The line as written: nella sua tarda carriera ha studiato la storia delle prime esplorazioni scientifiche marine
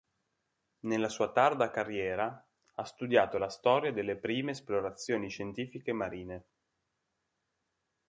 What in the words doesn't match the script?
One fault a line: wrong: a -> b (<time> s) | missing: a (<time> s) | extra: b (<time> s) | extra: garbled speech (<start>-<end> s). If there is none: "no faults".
no faults